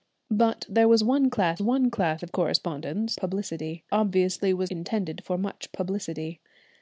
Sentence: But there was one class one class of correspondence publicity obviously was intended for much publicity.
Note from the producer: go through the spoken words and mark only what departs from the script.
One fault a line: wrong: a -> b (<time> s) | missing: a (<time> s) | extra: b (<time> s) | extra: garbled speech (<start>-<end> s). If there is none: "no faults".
no faults